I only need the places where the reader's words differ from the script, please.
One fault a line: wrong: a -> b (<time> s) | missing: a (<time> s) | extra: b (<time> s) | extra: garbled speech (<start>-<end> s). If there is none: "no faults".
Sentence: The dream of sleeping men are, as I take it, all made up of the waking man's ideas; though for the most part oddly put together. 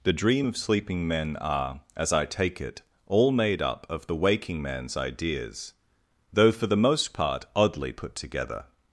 no faults